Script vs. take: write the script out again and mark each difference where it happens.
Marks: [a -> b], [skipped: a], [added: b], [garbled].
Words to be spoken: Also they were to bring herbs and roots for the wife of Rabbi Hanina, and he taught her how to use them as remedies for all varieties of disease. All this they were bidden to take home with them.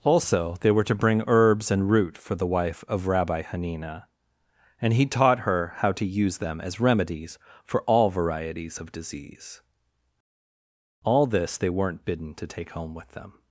Also they were to bring herbs and [roots -> root] for the wife of Rabbi Hanina, and he taught her how to use them as remedies for all varieties of disease. All this they [were -> weren't] bidden to take home with them.